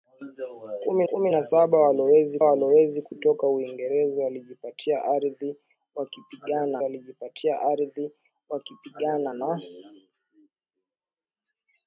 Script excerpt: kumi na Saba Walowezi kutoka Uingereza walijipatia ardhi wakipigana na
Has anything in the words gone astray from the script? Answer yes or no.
yes